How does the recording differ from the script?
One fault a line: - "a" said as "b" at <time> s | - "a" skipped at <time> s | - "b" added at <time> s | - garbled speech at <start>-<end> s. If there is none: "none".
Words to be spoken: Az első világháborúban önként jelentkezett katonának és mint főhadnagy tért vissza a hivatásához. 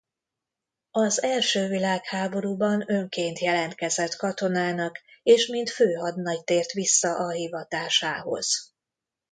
none